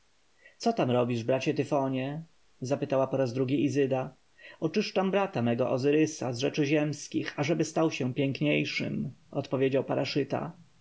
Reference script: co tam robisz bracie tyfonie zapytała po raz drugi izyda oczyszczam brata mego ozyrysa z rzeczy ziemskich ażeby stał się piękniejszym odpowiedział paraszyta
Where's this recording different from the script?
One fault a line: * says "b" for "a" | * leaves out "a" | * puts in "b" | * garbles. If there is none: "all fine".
all fine